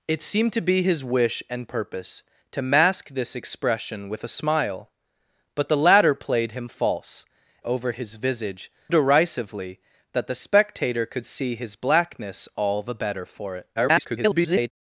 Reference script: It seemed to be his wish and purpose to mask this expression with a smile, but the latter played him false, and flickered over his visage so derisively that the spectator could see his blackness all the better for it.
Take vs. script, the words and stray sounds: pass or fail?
fail